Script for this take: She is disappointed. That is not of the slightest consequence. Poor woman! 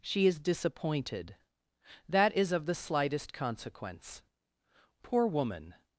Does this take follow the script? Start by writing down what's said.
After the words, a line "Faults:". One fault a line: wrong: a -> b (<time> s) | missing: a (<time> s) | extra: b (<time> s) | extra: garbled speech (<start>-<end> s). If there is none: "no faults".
She is disappointed. That is of the slightest consequence. Poor woman!
Faults:
missing: not (2.5 s)